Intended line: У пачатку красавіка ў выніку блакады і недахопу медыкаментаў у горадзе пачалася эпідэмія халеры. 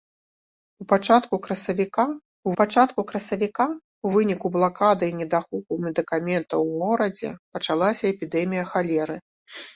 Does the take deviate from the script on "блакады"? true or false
false